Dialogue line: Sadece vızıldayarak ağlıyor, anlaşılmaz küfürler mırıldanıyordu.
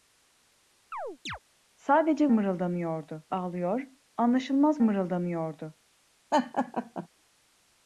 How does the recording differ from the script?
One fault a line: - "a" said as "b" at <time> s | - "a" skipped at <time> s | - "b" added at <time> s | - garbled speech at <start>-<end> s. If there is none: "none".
- "vızıldayarak" said as "mırıldanıyordu" at 2.3 s
- "küfürler" skipped at 4.8 s